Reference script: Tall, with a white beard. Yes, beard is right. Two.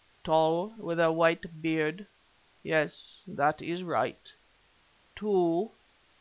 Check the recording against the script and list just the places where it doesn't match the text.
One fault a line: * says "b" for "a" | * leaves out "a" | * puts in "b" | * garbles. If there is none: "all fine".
* says "that" for "beard"